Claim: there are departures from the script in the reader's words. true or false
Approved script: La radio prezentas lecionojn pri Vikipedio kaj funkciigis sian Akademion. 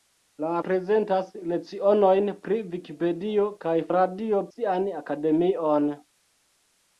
true